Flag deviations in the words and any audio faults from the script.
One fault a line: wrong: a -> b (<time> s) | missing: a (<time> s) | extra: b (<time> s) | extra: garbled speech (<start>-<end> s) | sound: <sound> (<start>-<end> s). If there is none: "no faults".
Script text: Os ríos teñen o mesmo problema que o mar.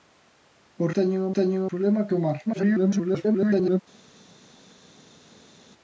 missing: ríos (0.9 s)
wrong: mesmo -> teñen (1.4 s)
extra: garbled speech (2.5-3.8 s)